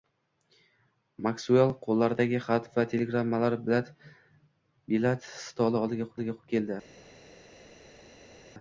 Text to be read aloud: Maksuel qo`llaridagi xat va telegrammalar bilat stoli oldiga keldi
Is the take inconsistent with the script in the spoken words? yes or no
yes